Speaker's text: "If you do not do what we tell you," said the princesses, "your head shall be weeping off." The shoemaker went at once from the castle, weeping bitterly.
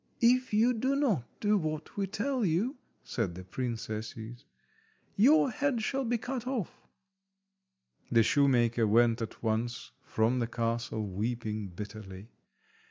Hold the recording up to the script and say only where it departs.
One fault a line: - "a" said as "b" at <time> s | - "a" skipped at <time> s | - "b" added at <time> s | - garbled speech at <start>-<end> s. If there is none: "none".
- "weeping" said as "cut" at 6.2 s